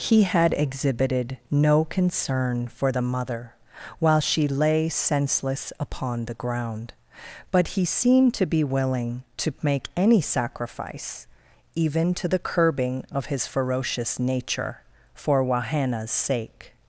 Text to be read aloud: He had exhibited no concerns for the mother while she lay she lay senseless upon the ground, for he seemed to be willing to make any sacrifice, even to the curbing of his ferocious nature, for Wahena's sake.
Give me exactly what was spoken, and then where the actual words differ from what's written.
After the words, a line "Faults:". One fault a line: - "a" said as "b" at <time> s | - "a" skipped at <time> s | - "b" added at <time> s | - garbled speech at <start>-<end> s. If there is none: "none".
He had exhibited no concern for the mother while she lay senseless upon the ground, but he seemed to be willing to make any sacrifice, even to the curbing of his ferocious nature, for Wahena's sake.
Faults:
- "concerns" said as "concern" at 1.9 s
- "she lay" skipped at 4.9 s
- "for" said as "but" at 7.5 s